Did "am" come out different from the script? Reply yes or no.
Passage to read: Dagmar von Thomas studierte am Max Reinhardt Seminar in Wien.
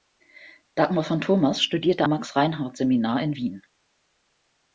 yes